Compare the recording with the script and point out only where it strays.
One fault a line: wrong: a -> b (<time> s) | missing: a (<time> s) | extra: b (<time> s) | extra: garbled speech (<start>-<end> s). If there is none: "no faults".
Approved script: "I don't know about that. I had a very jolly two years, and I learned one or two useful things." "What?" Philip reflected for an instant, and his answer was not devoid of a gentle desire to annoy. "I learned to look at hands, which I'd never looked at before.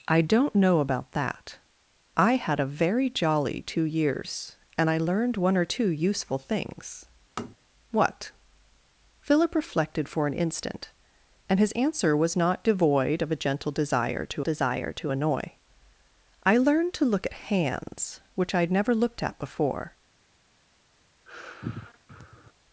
extra: desire to (14.4 s)